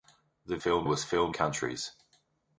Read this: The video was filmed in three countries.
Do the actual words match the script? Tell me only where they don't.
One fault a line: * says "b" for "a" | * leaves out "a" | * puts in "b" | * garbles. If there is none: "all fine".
* says "filmed" for "video"
* leaves out "in three"